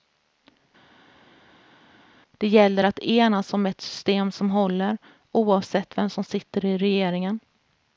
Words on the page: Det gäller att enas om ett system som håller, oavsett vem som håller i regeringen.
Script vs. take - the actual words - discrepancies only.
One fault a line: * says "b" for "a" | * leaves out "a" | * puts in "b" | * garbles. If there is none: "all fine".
* says "sitter" for "håller"